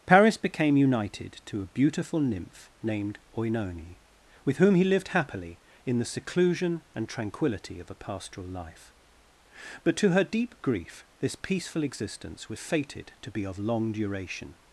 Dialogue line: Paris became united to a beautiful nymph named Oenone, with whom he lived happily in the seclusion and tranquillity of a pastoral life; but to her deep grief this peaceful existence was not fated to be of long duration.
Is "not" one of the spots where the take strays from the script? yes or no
yes